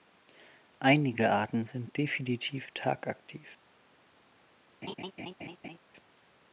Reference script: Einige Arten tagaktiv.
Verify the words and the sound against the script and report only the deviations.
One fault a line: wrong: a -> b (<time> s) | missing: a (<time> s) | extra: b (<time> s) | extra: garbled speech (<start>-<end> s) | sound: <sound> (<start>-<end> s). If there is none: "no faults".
extra: sind definitiv (1.6 s)
sound: laugh (4.8-5.8 s)